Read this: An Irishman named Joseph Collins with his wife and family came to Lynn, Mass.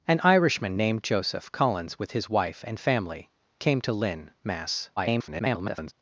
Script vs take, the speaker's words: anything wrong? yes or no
yes